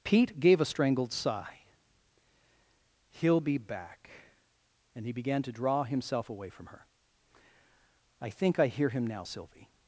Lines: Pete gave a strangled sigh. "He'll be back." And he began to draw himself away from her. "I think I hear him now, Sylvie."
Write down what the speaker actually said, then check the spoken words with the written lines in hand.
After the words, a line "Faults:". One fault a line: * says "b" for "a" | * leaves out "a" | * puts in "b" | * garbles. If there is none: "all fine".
Pete gave a strangled sigh. "He'll be back." And he began to draw himself away from her. "I think I hear him now, Sylvie."
Faults:
all fine